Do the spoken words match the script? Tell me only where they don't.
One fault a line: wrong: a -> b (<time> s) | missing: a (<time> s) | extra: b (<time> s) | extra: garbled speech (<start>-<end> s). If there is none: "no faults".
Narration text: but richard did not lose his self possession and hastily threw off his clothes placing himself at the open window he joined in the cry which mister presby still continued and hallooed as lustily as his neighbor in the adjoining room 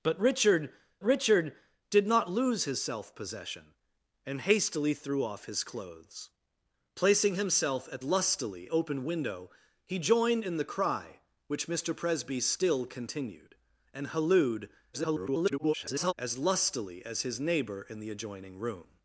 extra: richard (1.0 s)
wrong: the -> lustily (8.0 s)
extra: garbled speech (14.9-16.1 s)